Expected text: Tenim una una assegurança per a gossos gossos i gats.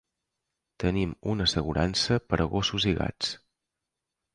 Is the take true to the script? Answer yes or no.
no